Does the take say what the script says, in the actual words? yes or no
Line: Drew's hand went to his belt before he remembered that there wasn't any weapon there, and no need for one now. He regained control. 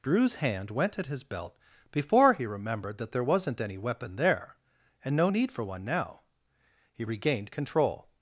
no